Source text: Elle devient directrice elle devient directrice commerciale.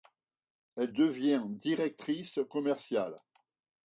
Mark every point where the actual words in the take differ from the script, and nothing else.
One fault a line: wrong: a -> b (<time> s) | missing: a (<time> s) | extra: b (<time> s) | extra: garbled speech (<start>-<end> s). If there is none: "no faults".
missing: elle devient directrice (2.4 s)